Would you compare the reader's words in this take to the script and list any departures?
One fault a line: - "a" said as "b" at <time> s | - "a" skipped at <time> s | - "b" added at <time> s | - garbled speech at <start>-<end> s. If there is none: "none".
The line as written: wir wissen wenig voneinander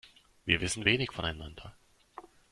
none